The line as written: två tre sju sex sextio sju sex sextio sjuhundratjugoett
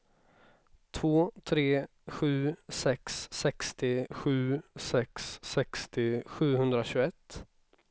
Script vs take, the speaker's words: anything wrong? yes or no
no